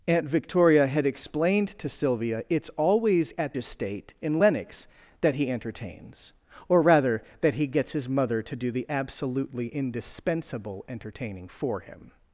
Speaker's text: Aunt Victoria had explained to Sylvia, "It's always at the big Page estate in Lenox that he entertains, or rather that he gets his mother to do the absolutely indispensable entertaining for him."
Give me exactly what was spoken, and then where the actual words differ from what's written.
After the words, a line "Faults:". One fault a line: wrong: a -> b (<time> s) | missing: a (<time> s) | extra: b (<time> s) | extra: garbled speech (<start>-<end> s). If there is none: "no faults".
Aunt Victoria had explained to Sylvia, "It's always at estate in Lenox that he entertains, or rather that he gets his mother to do the absolutely indispensable entertaining for him."
Faults:
missing: the big Page (3.6 s)